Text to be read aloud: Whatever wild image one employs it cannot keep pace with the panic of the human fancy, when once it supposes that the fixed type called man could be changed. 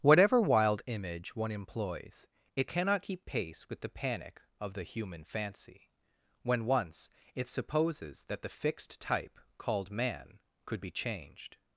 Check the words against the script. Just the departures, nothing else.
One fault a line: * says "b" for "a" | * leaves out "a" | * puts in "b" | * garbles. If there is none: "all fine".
all fine